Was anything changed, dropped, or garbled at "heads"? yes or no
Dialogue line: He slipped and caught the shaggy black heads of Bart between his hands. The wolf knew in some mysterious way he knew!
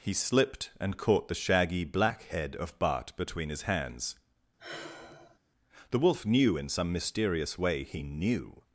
yes